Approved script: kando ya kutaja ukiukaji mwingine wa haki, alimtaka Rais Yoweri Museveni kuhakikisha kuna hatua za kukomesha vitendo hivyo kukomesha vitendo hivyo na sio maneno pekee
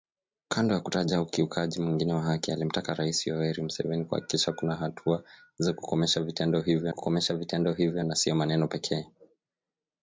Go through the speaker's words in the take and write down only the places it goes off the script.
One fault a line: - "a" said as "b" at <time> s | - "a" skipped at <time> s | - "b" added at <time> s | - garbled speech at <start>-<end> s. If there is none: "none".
none